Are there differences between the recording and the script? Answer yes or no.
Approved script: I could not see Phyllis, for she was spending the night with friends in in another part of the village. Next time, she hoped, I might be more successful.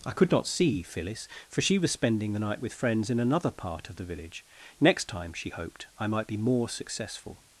yes